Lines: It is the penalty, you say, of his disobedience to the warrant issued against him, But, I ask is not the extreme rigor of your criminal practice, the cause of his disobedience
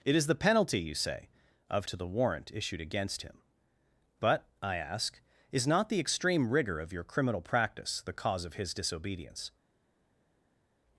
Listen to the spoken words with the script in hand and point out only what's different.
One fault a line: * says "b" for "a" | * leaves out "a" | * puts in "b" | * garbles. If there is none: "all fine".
* leaves out "his disobedience"